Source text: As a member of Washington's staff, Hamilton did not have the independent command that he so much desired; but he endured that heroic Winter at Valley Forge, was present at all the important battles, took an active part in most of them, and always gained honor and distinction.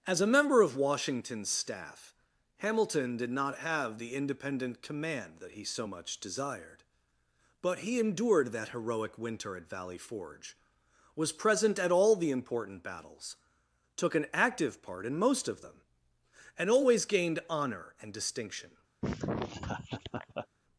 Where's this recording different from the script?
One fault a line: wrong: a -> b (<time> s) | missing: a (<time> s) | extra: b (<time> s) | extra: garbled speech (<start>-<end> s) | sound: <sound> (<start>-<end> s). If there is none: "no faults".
sound: laugh (19.0-20.5 s)